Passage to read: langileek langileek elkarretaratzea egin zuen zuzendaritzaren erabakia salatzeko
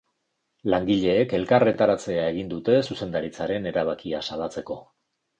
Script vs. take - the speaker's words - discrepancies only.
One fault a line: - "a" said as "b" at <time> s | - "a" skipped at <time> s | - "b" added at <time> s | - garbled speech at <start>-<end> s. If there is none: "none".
- "langileek" skipped at 1.4 s
- "zuen" said as "dute" at 2.5 s